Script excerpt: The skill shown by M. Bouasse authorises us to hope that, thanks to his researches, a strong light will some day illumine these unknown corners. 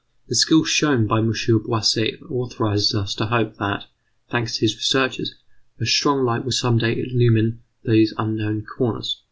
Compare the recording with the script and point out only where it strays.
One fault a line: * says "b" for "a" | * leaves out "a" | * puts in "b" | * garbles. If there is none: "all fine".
all fine